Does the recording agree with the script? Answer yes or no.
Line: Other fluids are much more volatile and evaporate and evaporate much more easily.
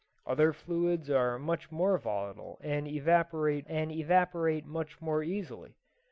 yes